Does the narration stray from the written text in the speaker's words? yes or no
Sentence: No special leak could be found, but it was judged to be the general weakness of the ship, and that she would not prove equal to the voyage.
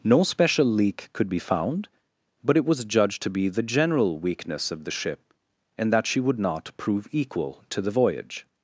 no